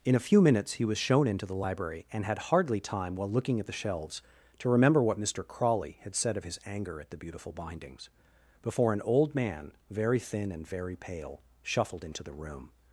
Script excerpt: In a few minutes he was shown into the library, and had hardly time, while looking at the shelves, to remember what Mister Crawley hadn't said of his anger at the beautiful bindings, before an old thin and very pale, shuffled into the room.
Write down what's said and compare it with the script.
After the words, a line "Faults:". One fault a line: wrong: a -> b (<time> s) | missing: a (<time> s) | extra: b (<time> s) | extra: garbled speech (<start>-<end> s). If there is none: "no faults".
In a few minutes he was shown into the library, and had hardly time, while looking at the shelves, to remember what Mister Crawley had said of his anger at the beautiful bindings, before an old man, very thin and very pale, shuffled into the room.
Faults:
wrong: hadn't -> had (6.0 s)
extra: man very (9.3 s)